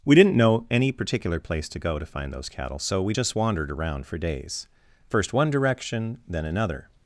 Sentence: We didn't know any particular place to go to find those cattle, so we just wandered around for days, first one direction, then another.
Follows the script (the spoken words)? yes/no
yes